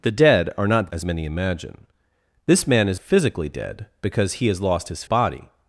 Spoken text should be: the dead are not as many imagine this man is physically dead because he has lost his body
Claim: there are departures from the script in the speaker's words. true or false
false